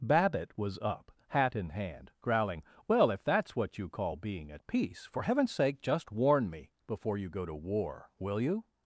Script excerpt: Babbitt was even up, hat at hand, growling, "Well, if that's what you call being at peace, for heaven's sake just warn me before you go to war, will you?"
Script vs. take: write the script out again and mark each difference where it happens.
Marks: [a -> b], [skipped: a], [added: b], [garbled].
Babbitt was [skipped: even] up, hat [at -> in] hand, growling, "Well, if that's what you call being at peace, for heaven's sake just warn me before you go to war, will you?"